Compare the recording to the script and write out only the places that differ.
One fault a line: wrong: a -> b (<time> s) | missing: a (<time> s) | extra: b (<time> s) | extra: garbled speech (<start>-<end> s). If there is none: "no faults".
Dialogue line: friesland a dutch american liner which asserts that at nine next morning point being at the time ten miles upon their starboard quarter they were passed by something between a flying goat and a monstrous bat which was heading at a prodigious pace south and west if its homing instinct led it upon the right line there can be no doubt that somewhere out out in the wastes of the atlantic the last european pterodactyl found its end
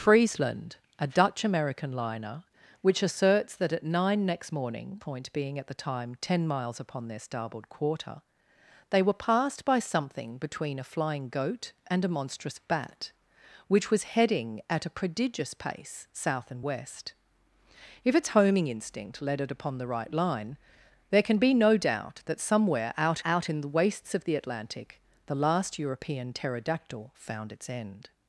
no faults